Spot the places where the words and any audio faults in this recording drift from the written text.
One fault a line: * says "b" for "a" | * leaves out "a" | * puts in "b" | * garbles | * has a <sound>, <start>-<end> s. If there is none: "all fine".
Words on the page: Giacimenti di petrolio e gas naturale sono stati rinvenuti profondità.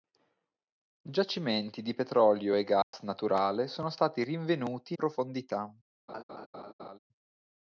* has a dropout, 2.8-2.9 s
* has a laugh, 6.1-7.0 s